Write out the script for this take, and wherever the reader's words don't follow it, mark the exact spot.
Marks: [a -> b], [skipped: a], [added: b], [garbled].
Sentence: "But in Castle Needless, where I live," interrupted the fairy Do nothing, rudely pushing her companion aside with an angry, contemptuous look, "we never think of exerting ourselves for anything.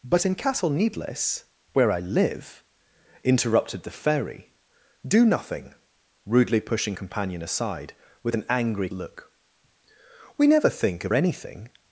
"But in Castle Needless, where I live," interrupted the fairy Do nothing, rudely pushing [skipped: her] companion aside with an angry, [skipped: contemptuous] look, "we never think of [skipped: exerting ourselves for] anything.